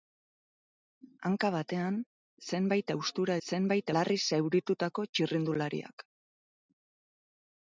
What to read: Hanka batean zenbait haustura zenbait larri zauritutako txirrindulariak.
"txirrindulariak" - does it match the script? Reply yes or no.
yes